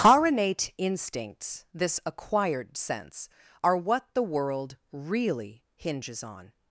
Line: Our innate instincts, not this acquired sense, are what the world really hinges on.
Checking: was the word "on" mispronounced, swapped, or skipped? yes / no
no